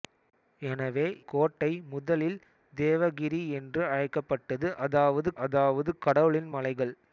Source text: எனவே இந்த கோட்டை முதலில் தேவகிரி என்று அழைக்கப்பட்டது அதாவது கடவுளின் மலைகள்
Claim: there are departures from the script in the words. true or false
true